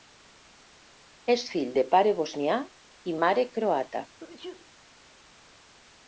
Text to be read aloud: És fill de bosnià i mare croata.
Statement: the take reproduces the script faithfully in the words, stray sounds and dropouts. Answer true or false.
false